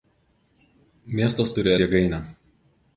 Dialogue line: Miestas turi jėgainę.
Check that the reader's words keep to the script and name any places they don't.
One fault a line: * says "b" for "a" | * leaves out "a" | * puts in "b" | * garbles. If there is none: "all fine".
all fine